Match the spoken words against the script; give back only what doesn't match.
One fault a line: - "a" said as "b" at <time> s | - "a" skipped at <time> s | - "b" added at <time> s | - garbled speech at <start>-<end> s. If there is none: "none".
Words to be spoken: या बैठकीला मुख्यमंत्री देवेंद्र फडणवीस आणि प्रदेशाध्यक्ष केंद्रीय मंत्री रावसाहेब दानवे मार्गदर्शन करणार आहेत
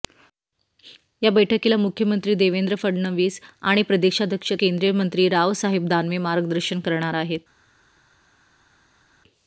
none